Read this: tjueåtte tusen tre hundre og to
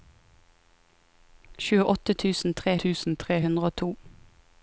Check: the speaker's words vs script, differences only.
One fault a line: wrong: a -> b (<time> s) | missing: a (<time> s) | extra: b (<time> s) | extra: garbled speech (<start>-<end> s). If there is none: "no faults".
extra: tusen tre (2.8 s)